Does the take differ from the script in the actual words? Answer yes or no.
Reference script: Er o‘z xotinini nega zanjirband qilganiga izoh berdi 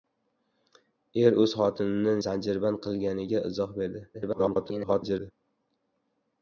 yes